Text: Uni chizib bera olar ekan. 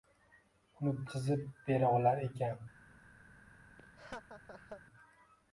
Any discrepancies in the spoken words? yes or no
no